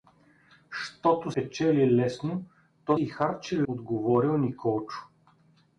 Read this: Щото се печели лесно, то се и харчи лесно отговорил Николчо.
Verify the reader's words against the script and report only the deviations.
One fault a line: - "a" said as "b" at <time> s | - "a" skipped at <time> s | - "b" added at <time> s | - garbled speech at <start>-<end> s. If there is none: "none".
- "се" skipped at 1.3 s
- "се" skipped at 3.0 s
- "лесно" skipped at 3.6 s